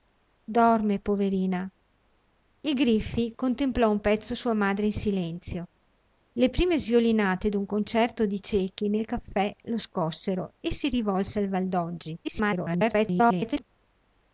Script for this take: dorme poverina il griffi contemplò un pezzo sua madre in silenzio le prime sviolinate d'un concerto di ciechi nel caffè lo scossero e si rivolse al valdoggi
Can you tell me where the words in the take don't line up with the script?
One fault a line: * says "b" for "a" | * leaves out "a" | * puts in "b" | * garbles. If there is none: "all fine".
* garbles